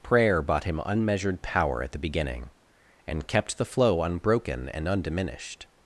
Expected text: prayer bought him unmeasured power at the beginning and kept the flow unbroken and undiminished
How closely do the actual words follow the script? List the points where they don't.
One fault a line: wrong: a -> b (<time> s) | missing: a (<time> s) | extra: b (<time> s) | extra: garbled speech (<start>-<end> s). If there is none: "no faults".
no faults